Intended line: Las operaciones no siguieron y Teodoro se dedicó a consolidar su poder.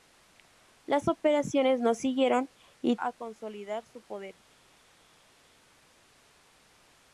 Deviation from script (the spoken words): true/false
true